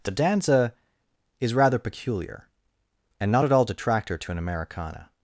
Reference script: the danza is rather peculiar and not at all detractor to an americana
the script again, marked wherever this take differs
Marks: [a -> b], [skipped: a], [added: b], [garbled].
the danza is rather peculiar and not at all detractor to an americana